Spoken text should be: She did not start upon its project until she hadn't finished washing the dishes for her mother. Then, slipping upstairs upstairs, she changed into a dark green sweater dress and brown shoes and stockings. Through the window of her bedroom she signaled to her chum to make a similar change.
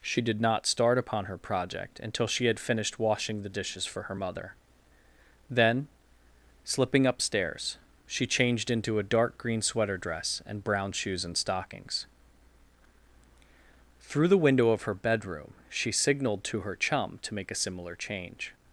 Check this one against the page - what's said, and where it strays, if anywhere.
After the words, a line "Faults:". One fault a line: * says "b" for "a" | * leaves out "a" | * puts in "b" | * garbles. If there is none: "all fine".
She did not start upon her project until she had finished washing the dishes for her mother. Then, slipping upstairs, she changed into a dark green sweater dress and brown shoes and stockings. Through the window of her bedroom she signaled to her chum to make a similar change.
Faults:
* says "her" for "its"
* says "had" for "hadn't"
* leaves out "upstairs"